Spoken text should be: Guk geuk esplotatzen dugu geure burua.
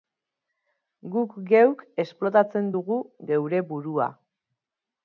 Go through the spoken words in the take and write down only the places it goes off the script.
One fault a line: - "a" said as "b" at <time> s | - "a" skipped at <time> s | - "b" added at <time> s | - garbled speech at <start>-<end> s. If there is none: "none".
none